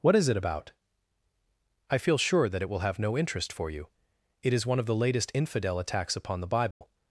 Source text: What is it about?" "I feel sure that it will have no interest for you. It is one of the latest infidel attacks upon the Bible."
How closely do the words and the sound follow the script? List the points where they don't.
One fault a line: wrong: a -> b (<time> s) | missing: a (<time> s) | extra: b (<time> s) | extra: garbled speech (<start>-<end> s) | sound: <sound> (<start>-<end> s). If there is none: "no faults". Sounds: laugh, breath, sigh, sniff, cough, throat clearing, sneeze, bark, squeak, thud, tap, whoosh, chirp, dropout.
sound: dropout (6.7-6.8 s)